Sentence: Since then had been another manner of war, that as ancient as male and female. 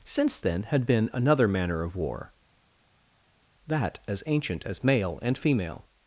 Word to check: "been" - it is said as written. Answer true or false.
true